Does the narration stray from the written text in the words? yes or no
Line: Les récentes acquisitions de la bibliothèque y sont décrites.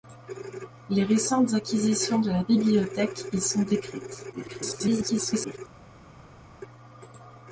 yes